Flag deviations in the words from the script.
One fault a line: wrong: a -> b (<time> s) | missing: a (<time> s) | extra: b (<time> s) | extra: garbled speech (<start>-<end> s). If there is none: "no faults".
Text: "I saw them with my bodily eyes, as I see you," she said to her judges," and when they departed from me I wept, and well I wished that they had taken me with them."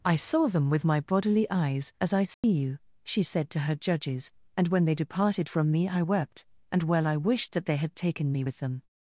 no faults